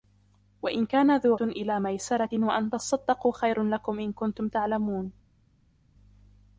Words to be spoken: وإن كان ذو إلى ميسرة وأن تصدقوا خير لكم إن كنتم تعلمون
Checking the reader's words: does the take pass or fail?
pass